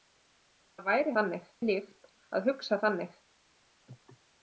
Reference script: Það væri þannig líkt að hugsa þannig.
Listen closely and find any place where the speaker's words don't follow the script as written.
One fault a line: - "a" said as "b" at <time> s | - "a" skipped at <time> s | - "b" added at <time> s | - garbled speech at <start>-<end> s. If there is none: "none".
none